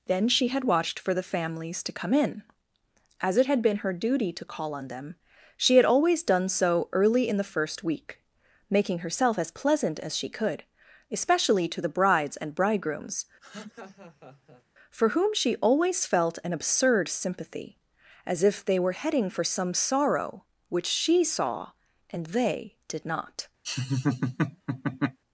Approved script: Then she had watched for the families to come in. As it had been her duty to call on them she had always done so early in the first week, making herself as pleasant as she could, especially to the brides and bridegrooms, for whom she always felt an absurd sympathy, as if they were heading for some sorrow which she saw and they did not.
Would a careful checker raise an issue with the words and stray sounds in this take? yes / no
yes